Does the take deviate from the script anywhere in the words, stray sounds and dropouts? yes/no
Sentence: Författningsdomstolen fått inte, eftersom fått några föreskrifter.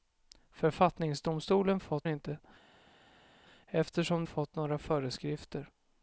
no